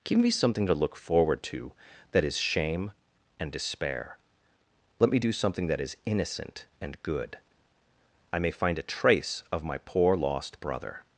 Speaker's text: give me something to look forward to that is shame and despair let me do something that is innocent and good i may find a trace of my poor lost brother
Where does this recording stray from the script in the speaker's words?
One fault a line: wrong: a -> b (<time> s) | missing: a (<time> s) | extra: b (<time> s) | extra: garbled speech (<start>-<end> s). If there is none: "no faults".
no faults